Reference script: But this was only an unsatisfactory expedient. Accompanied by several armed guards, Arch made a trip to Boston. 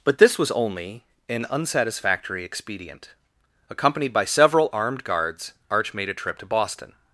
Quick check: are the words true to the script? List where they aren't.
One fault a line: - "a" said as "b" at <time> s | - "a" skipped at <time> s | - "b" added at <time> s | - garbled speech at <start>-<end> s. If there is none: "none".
none